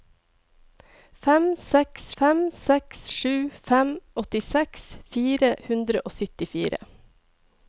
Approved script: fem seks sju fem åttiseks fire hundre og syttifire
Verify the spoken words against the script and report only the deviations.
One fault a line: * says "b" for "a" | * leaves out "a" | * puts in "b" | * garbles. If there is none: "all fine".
* puts in "fem seks"